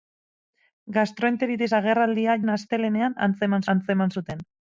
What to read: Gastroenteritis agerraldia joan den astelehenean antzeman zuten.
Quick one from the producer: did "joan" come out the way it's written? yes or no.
no